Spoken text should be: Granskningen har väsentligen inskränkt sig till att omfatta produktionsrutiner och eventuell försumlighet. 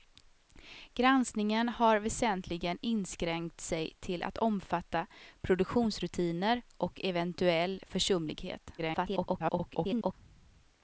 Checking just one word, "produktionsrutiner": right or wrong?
right